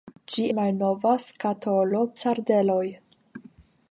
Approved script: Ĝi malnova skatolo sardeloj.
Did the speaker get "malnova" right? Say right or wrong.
right